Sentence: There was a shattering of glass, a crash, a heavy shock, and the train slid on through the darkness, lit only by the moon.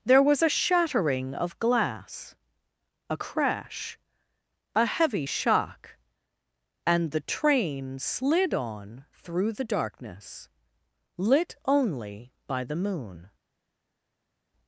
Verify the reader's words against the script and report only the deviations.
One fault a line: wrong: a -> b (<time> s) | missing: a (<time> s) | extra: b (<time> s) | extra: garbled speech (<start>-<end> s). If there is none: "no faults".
no faults